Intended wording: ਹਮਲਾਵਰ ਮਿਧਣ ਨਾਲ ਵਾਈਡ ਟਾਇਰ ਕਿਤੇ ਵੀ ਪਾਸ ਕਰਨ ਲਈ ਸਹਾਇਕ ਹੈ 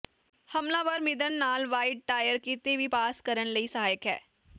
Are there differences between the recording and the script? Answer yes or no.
no